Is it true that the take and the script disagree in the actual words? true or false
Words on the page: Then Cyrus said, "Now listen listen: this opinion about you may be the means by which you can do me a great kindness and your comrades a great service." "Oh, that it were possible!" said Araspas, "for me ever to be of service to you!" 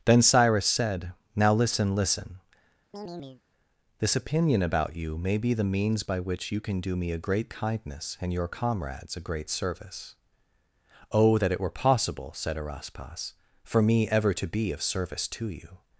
false